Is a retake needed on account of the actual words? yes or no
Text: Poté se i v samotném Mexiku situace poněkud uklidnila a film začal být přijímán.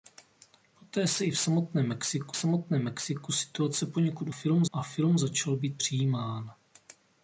yes